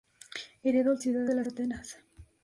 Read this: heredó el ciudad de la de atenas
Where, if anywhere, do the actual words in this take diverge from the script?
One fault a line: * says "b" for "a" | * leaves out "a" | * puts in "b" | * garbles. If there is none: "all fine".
all fine